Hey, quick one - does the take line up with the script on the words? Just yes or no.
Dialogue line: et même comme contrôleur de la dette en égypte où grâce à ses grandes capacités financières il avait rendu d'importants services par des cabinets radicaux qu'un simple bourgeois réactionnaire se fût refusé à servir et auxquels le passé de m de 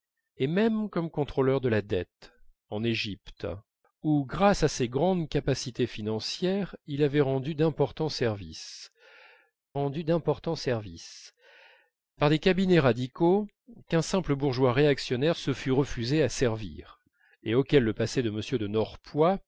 no